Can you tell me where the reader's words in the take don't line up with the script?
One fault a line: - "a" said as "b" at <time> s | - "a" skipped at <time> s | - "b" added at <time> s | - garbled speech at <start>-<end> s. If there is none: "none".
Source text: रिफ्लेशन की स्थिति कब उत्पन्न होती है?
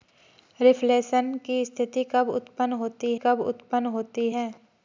- "कब उत्पन्न होती" added at 3.1 s